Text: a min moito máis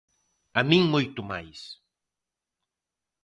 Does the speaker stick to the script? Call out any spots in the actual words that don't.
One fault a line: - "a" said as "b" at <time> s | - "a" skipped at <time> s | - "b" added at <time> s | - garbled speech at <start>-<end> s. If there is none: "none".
none